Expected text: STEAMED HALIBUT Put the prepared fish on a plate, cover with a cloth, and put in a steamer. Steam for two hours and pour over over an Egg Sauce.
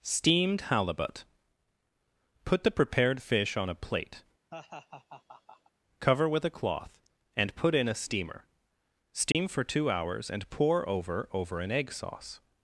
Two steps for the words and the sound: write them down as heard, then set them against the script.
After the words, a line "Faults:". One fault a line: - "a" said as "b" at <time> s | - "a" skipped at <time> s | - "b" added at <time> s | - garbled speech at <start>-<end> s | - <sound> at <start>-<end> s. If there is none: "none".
STEAMED HALIBUT Put the prepared fish on a plate, cover with a cloth, and put in a steamer. Steam for two hours and pour over over an Egg Sauce.
Faults:
- laugh at 4.5-5.7 s
- dropout at 9.3-9.3 s